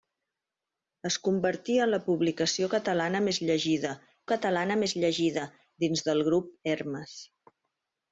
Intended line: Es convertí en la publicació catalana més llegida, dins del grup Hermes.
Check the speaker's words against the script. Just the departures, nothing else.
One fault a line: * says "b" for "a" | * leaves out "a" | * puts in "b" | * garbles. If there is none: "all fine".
* puts in "catalana més llegida"